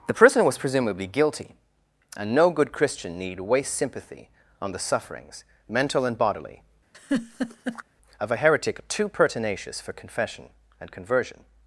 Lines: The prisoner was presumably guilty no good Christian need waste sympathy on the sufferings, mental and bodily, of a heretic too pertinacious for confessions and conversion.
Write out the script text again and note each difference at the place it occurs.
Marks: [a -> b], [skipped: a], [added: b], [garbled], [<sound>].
The prisoner was presumably guilty [added: and] no good Christian need waste sympathy on the sufferings, mental and bodily, [laugh] of a heretic too pertinacious for [confessions -> confession] and conversion.